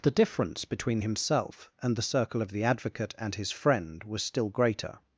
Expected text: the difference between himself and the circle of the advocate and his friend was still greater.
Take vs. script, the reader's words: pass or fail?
pass